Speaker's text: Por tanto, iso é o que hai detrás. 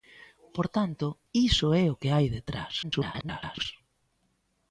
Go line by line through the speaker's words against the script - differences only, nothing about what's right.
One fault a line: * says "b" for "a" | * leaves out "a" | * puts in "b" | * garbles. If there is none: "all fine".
* garbles